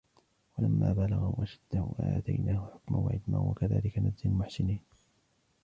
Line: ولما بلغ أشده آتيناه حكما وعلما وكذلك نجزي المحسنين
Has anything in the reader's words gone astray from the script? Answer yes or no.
no